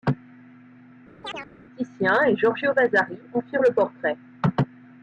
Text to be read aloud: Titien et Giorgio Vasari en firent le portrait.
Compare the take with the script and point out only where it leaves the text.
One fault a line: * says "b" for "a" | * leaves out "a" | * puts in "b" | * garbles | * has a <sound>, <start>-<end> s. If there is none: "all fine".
* has a chirp, 1.2-1.5 s